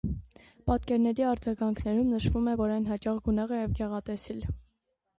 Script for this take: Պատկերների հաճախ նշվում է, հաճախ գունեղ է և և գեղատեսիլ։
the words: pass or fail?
fail